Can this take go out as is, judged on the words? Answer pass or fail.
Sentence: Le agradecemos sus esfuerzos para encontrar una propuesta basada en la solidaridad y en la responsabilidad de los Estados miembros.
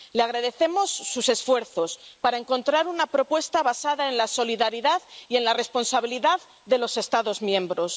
pass